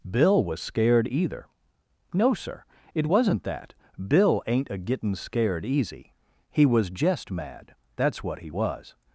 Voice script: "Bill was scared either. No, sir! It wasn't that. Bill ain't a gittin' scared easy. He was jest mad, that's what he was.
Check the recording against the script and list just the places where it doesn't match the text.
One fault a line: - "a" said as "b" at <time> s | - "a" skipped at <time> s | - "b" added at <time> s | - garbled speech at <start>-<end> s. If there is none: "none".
none